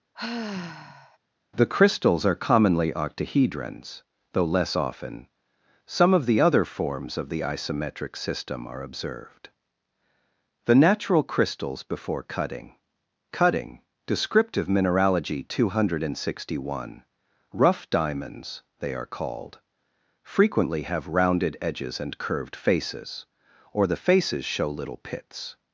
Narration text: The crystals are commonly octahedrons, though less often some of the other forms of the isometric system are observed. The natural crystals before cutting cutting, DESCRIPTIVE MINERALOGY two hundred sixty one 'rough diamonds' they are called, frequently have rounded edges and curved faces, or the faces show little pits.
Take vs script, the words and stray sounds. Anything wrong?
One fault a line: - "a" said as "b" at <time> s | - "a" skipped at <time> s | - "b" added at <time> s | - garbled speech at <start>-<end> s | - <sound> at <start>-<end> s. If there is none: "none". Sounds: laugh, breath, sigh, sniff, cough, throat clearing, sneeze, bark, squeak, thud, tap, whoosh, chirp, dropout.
- sigh at 0.1-1.2 s